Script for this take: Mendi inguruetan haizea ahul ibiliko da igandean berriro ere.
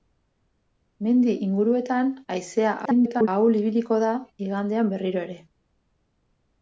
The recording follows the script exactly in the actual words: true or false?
false